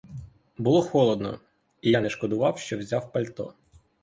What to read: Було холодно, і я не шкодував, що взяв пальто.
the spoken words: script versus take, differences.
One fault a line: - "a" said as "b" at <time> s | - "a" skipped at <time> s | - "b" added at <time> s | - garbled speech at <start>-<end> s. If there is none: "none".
none